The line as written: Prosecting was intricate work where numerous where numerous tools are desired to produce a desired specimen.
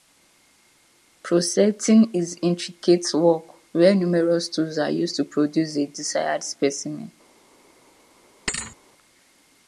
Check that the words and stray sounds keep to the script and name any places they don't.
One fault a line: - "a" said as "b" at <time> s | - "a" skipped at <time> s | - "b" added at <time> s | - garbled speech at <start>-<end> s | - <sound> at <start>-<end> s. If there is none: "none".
- "was" said as "is" at 2.1 s
- "where numerous" skipped at 4.5 s
- "desired" said as "used" at 4.9 s
- thud at 8.5-8.8 s